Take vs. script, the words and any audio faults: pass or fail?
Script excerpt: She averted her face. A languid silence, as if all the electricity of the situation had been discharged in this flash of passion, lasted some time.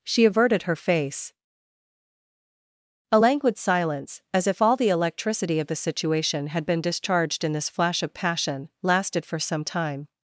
fail